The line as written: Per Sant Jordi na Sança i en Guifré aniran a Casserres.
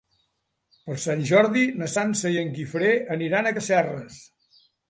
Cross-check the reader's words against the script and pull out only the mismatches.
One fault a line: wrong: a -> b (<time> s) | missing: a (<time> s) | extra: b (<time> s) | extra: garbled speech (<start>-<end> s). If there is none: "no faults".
no faults